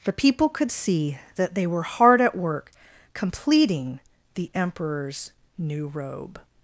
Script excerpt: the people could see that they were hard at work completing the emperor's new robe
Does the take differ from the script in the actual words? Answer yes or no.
no